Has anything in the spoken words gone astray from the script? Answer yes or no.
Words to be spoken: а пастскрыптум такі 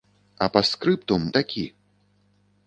no